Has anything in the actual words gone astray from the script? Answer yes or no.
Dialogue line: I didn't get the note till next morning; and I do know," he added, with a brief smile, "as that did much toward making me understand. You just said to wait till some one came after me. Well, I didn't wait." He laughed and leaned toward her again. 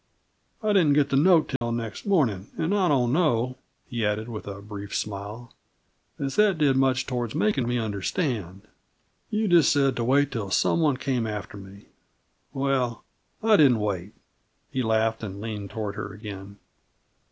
yes